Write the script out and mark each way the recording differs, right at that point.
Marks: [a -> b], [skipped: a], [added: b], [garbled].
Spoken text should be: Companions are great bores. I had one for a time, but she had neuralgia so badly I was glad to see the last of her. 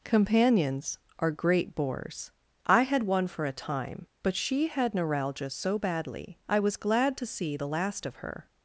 Companions are great bores. I had one for a time, but she had neuralgia so badly I was glad to see the last of her.